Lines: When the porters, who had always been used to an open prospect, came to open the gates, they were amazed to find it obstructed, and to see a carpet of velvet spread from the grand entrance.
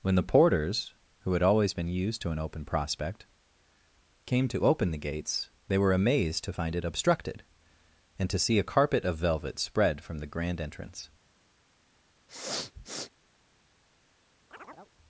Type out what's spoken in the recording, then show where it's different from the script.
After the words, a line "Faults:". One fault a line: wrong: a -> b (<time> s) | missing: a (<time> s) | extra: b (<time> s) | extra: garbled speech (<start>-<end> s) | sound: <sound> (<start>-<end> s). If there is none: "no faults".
When the porters, who had always been used to an open prospect, came to open the gates, they were amazed to find it obstructed, and to see a carpet of velvet spread from the grand entrance.
Faults:
sound: sniff (12.3-13.1 s)
sound: chirp (14.5-14.9 s)